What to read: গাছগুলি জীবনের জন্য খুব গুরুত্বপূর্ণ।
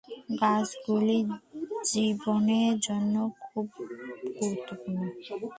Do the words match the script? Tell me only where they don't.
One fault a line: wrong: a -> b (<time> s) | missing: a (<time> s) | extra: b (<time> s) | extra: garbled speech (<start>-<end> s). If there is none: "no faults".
no faults